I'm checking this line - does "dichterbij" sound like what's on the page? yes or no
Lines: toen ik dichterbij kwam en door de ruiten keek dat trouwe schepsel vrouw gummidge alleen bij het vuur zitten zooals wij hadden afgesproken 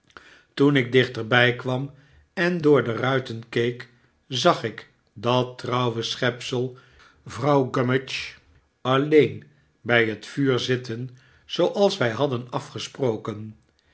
yes